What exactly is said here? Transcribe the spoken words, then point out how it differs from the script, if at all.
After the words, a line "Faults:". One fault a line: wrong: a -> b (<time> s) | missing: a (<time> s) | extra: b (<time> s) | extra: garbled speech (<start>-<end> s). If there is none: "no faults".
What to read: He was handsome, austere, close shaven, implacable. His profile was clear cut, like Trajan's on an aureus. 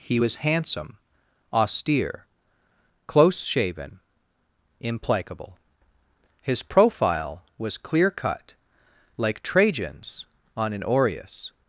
He was handsome, austere, close shaven, implacable. His profile was clear cut, like Trajan's on an aureus.
Faults:
no faults